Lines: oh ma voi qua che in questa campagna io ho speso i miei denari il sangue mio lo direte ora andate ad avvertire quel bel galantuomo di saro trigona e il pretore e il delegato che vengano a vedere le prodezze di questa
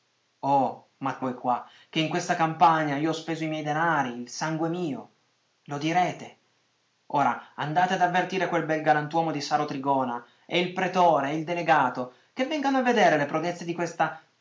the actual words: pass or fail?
pass